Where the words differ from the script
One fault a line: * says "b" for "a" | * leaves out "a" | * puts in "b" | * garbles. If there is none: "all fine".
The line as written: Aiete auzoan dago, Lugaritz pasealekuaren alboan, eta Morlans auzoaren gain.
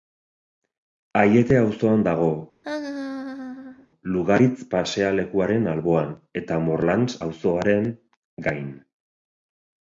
all fine